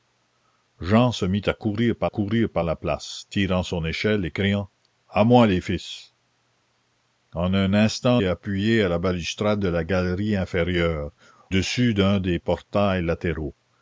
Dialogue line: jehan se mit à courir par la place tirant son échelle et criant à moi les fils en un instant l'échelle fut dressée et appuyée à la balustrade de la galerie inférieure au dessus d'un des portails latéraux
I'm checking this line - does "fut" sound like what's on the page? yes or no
no